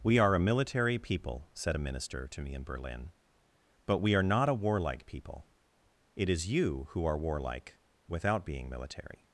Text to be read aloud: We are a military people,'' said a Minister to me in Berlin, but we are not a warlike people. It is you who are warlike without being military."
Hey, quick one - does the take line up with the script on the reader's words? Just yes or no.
yes